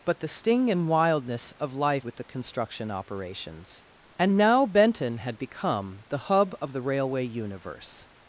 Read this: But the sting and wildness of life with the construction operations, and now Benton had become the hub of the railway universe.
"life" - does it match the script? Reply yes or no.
yes